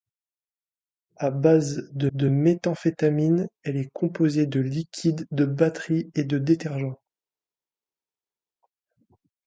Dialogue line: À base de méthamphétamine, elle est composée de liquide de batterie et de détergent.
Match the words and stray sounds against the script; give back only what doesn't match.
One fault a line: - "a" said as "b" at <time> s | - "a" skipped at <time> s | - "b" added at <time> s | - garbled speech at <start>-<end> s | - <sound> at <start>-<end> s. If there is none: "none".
- "de" added at 2.1 s